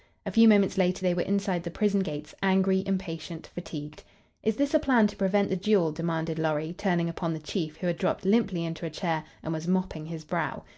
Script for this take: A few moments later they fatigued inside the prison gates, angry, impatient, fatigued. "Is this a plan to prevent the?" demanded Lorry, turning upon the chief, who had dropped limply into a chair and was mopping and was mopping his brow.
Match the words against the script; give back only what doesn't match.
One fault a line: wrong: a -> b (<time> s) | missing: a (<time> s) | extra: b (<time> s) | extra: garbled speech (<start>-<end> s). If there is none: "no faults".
wrong: fatigued -> were (1.1 s)
extra: duel (5.6 s)
missing: and was mopping (10.0 s)